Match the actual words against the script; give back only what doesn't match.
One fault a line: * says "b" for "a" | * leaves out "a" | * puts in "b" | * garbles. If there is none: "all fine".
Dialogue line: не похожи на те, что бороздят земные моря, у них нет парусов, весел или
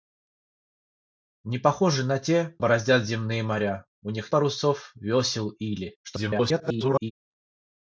* leaves out "что"
* leaves out "нет"
* garbles